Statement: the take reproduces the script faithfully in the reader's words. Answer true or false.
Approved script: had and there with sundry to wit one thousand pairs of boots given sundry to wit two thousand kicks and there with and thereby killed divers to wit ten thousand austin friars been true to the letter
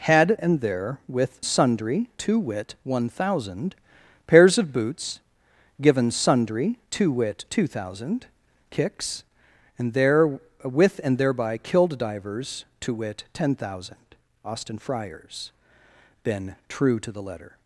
true